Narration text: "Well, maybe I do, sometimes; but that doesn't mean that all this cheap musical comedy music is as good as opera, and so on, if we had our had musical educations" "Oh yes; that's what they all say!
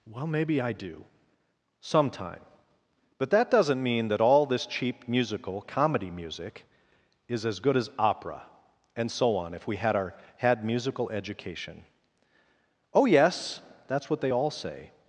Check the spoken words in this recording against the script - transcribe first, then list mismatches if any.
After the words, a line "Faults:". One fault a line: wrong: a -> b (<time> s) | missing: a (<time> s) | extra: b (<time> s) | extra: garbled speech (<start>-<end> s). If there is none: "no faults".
"Well, maybe I do, sometime; but that doesn't mean that all this cheap musical comedy music is as good as opera, and so on, if we had our had musical education" "Oh yes; that's what they all say!
Faults:
wrong: sometimes -> sometime (1.8 s)
wrong: educations -> education (11.1 s)